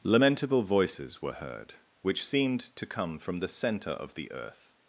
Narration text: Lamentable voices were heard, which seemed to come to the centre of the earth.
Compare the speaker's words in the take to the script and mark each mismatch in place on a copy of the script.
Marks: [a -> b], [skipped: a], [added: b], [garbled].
Lamentable voices were heard, which seemed to come [to -> from] the centre of the earth.